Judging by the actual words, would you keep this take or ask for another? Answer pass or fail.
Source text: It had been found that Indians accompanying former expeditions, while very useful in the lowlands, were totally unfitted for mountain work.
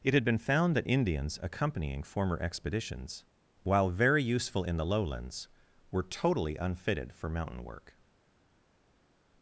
pass